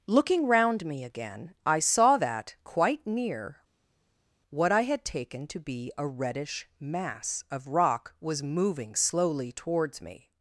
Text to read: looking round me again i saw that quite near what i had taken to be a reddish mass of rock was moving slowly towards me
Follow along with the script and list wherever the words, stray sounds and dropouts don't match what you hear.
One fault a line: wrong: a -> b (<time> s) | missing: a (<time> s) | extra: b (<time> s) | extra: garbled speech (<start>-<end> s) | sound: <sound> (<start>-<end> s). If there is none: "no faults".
no faults